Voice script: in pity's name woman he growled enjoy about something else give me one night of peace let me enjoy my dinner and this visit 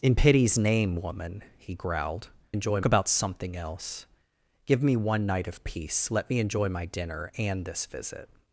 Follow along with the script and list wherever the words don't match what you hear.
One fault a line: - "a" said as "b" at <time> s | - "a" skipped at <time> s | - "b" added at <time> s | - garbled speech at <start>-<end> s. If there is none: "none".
none